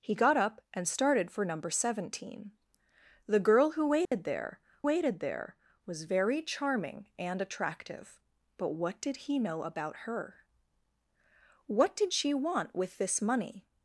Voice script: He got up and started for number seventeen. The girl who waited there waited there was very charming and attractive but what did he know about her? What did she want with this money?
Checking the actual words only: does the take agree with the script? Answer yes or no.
yes